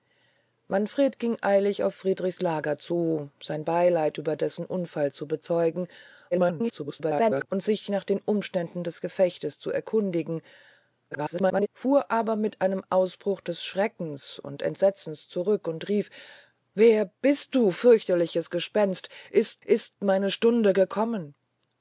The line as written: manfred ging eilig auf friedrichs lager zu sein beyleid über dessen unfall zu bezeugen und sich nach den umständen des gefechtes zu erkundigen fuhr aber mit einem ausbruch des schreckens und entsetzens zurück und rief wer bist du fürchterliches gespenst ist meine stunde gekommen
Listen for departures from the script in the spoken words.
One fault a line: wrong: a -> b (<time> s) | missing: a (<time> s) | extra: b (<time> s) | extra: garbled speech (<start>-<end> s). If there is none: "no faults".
extra: garbled speech (6.3-7.5 s)
extra: garbled speech (11.1-11.7 s)
extra: ist (19.6 s)